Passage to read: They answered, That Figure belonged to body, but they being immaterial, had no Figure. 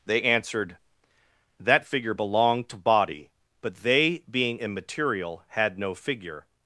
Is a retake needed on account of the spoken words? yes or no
no